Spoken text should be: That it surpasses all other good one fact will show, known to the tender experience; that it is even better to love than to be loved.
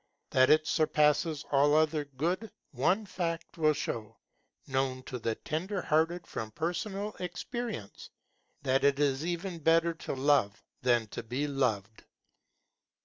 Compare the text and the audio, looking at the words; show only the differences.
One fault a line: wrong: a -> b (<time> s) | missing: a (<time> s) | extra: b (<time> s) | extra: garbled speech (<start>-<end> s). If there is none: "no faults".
extra: hearted from personal (5.8 s)